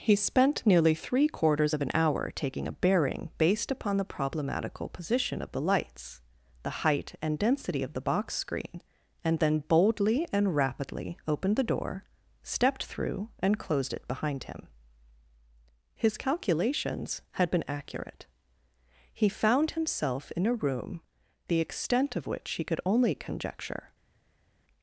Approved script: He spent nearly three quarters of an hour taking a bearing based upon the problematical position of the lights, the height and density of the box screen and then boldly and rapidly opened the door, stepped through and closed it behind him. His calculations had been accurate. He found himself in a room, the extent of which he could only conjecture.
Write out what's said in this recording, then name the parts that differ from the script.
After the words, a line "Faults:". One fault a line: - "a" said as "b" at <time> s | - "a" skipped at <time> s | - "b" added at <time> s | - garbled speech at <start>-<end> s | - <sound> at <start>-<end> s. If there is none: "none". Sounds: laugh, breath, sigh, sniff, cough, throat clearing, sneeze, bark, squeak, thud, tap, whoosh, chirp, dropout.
He spent nearly three quarters of an hour taking a bearing based upon the problematical position of the lights, the height and density of the box screen and then boldly and rapidly opened the door, stepped through and closed it behind him. His calculations had been accurate. He found himself in a room, the extent of which he could only conjecture.
Faults:
none